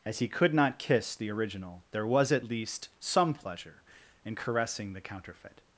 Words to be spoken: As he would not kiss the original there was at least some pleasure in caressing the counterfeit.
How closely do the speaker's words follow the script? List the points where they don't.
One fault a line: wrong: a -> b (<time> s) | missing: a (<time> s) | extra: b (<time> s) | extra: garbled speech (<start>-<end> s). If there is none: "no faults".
wrong: would -> could (0.3 s)